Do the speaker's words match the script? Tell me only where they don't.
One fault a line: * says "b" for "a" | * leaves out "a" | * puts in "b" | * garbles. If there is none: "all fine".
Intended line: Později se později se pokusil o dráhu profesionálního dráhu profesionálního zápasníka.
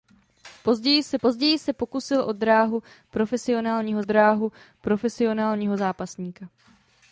all fine